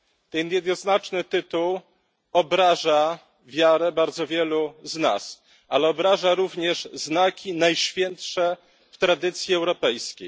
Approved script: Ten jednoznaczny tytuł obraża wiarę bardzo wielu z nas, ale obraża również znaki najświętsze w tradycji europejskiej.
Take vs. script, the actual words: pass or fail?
pass